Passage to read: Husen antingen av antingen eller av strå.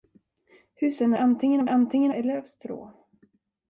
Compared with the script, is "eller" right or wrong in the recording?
right